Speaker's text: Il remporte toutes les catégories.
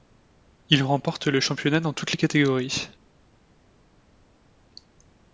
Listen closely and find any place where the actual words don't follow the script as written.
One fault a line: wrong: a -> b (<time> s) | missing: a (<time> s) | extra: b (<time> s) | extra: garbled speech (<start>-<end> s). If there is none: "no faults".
extra: le championnat dans (1.3 s)